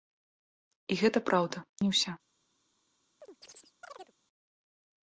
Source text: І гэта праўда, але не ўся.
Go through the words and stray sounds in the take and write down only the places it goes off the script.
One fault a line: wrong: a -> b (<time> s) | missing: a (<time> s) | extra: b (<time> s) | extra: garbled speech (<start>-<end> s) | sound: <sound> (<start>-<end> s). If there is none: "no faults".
missing: але (1.6 s)
sound: chirp (3.2-4.1 s)